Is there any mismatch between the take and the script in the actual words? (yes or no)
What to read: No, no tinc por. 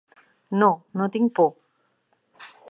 no